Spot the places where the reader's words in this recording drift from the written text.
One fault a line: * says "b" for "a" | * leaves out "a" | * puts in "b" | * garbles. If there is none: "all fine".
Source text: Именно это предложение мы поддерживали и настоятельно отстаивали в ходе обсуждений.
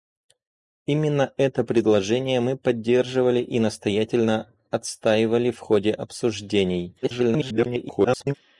* garbles